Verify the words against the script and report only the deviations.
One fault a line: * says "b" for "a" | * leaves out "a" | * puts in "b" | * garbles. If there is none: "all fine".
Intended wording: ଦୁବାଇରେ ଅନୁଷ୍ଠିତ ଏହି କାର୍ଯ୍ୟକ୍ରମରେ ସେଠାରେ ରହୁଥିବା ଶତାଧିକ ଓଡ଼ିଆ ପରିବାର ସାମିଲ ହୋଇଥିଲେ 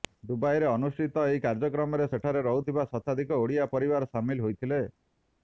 all fine